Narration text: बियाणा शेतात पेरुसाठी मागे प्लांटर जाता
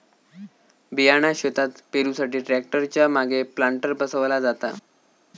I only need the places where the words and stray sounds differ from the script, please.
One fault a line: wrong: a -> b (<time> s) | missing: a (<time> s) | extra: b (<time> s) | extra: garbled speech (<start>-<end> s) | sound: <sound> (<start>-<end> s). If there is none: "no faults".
extra: ट्रॅक्टर च्या (2.4 s)
extra: बसवला (3.9 s)